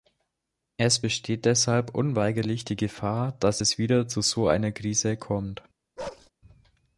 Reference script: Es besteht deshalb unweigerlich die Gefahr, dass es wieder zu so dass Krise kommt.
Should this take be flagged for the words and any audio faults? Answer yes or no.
yes